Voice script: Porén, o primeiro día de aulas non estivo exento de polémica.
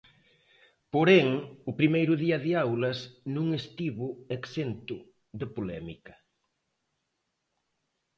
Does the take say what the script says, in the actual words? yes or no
yes